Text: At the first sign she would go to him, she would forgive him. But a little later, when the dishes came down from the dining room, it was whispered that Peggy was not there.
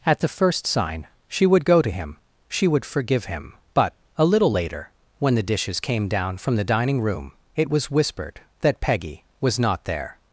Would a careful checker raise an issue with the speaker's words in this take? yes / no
no